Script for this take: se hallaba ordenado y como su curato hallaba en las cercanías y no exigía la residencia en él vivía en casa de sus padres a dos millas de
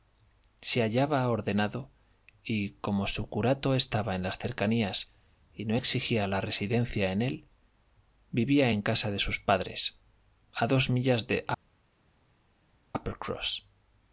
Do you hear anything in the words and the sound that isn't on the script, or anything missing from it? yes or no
yes